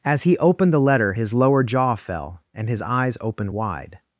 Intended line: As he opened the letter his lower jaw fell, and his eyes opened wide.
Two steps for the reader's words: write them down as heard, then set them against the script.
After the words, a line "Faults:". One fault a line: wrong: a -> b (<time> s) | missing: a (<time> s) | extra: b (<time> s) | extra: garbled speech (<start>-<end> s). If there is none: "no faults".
As he opened the letter his lower jaw fell, and his eyes opened wide.
Faults:
no faults